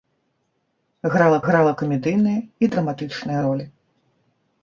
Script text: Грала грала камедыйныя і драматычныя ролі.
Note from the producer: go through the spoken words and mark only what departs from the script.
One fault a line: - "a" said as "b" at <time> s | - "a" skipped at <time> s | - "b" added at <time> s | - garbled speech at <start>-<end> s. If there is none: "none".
none